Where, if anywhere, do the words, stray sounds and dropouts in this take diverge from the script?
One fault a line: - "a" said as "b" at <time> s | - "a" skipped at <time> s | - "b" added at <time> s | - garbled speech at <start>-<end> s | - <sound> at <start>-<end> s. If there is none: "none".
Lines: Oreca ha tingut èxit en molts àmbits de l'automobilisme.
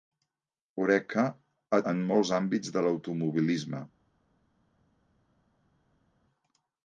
- "tingut èxit" skipped at 1.8 s